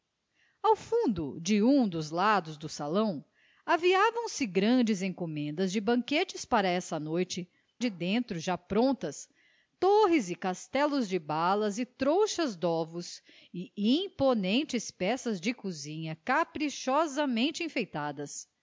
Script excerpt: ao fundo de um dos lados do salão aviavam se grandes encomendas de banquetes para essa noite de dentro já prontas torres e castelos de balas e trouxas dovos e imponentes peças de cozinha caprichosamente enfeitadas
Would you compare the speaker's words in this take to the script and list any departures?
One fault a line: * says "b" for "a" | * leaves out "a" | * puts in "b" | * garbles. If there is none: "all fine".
all fine